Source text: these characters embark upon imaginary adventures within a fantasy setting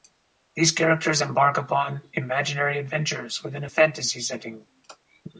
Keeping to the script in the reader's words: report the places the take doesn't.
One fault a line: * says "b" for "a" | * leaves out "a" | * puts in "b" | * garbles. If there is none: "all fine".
all fine